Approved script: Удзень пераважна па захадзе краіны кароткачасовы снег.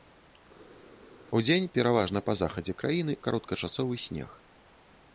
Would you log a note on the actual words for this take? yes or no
no